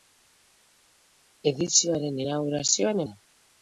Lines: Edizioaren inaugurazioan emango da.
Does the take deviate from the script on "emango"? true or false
true